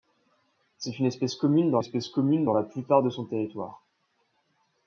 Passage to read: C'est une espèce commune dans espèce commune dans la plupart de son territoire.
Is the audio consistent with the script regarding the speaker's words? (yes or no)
yes